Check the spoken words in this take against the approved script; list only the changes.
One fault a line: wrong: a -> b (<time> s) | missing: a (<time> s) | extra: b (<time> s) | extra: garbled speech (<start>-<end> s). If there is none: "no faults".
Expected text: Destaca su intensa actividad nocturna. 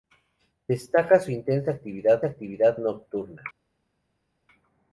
extra: actividad (2.2 s)